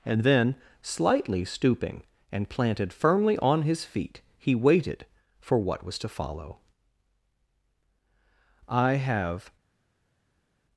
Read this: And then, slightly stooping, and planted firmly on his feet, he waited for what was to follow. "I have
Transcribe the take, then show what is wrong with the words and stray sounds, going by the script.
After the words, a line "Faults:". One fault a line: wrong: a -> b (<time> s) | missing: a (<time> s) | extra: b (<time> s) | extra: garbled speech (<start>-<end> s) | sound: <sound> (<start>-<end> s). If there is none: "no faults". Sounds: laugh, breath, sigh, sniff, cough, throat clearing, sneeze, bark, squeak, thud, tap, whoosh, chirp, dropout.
And then, slightly stooping, and planted firmly on his feet, he waited for what was to follow. "I have
Faults:
no faults